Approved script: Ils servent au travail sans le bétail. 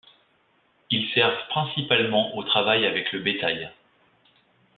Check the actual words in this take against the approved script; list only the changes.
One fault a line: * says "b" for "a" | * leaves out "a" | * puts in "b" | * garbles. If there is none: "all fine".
* puts in "principalement"
* says "avec" for "sans"